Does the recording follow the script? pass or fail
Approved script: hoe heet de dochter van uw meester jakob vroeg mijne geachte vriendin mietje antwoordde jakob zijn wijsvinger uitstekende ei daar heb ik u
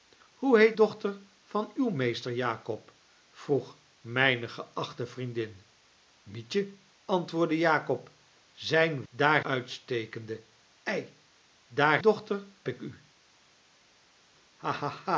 fail